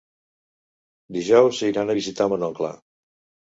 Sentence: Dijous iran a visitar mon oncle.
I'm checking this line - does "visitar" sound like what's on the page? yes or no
yes